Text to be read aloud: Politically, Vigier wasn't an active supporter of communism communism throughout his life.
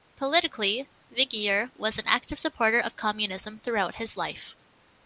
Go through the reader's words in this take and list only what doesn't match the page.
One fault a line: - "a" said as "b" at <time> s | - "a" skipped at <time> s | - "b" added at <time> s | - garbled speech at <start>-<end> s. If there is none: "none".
- "wasn't" said as "was" at 1.7 s
- "communism" skipped at 3.6 s